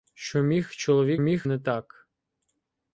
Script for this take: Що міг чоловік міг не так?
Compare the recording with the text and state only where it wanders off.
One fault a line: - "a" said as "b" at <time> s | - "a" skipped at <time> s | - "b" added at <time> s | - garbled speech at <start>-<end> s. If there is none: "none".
none